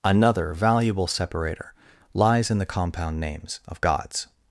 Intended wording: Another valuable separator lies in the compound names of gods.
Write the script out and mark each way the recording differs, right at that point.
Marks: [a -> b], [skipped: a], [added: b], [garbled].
Another valuable separator lies in the compound names of gods.